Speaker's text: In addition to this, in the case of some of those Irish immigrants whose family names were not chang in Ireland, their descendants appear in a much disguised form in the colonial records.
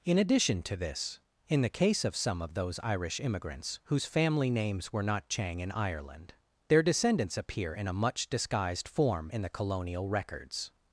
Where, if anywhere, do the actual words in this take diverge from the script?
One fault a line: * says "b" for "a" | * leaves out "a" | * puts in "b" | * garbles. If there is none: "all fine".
all fine